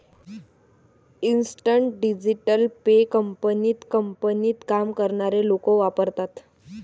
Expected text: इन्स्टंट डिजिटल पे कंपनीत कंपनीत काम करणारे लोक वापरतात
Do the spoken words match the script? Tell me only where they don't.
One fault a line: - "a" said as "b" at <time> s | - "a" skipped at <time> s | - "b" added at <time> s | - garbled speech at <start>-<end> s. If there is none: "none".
none